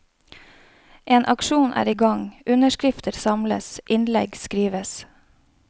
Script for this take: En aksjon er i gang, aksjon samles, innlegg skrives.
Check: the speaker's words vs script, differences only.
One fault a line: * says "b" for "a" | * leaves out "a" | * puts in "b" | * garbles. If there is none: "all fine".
* says "underskrifter" for "aksjon"